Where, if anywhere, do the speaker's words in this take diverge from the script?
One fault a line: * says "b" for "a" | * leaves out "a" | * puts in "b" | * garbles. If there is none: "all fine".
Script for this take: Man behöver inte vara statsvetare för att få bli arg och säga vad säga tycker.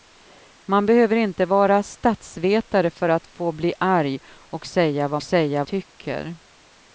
all fine